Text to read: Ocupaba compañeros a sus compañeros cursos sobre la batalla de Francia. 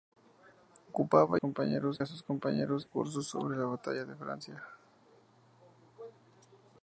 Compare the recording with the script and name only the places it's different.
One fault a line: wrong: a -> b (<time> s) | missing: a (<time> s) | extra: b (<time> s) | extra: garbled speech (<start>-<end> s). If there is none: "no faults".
no faults